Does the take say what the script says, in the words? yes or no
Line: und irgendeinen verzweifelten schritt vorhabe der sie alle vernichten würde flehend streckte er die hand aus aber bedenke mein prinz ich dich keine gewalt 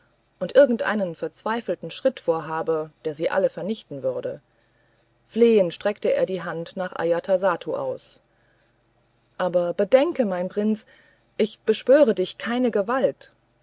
no